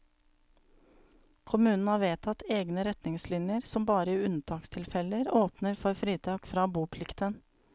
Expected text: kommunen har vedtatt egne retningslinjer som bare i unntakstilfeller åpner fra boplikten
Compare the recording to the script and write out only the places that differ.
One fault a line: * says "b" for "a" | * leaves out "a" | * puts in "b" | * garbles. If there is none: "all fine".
* puts in "for fritak"